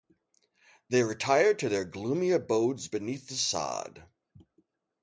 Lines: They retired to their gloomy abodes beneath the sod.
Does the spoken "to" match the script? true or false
true